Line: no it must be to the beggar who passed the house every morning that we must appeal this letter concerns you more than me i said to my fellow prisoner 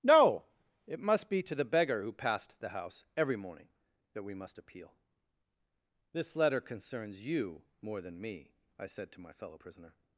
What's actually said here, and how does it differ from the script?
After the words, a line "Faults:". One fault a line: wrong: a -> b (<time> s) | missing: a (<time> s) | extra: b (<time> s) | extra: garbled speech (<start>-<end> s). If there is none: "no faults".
no it must be to the beggar who passed the house every morning that we must appeal this letter concerns you more than me i said to my fellow prisoner
Faults:
no faults